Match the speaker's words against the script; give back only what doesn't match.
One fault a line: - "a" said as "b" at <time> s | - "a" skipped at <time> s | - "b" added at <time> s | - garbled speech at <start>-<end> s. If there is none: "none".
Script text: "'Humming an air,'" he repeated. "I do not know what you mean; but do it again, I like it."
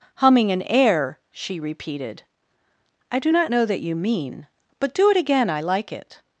- "he" said as "she" at 1.3 s
- "what" said as "that" at 3.6 s